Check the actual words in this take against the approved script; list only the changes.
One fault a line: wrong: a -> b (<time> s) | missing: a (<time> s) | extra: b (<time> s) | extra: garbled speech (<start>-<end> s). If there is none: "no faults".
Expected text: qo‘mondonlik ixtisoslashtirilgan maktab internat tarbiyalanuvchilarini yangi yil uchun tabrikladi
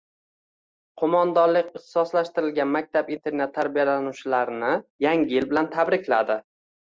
wrong: uchun -> bilan (5.5 s)